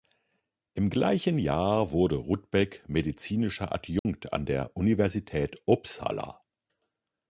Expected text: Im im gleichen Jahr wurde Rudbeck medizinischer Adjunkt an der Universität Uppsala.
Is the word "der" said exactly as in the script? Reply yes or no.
yes